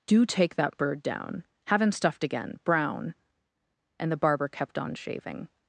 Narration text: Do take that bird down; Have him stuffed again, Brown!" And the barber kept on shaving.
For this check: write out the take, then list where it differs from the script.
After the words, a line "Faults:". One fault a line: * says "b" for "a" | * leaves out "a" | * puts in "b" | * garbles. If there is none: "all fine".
Do take that bird down; Have him stuffed again, Brown!" And the barber kept on shaving.
Faults:
all fine